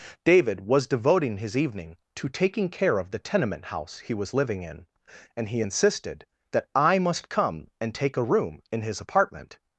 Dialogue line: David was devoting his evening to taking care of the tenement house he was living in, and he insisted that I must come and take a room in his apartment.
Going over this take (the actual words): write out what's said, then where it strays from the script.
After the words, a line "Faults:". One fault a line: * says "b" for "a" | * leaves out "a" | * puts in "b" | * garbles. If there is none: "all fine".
David was devoting his evening to taking care of the tenement house he was living in, and he insisted that I must come and take a room in his apartment.
Faults:
all fine